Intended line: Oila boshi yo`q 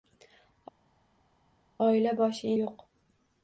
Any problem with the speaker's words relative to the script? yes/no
no